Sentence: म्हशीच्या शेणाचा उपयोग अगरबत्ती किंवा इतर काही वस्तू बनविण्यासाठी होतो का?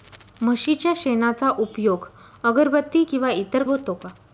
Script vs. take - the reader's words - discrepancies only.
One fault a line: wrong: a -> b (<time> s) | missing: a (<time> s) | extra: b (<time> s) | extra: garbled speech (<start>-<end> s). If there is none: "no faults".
missing: काही वस्तू बनविण्यासाठी (3.6 s)